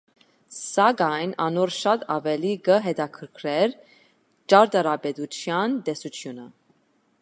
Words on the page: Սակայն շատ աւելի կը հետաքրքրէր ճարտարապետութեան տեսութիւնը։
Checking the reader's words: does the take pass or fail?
fail